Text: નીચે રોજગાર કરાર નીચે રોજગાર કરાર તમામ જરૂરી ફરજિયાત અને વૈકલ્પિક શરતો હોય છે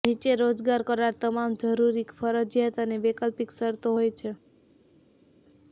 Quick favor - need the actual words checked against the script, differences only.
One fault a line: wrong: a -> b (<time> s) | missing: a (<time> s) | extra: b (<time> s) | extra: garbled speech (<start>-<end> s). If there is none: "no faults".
missing: નીચે રોજગાર કરાર (1.1 s)